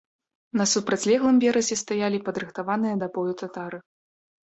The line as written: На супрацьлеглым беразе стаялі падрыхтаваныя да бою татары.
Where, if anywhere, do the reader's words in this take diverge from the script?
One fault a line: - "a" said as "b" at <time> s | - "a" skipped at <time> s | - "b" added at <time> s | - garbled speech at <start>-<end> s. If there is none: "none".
none